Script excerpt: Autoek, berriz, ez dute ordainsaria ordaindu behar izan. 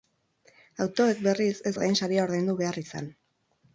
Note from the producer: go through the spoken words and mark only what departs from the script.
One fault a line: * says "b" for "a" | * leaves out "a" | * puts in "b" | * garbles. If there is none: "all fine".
* leaves out "dute"